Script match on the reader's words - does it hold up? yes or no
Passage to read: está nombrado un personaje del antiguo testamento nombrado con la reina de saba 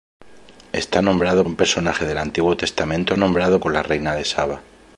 yes